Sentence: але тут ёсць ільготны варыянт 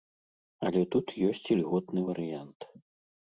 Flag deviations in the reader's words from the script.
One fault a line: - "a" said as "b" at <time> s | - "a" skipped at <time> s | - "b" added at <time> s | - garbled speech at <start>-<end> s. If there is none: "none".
none